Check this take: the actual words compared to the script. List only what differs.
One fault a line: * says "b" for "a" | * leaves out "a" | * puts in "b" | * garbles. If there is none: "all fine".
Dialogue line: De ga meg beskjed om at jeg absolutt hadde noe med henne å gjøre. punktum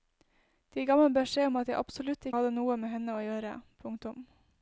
all fine